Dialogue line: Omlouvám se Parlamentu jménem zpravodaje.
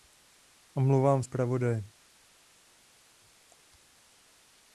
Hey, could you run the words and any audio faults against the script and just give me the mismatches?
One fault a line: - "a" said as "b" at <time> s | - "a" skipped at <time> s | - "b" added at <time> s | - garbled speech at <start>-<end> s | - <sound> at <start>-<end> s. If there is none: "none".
- "se Parlamentu jménem" skipped at 1.2 s